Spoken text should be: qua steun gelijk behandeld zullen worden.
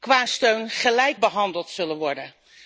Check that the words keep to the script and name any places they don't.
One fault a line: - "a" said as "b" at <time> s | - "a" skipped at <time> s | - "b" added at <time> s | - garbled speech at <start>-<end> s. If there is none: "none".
none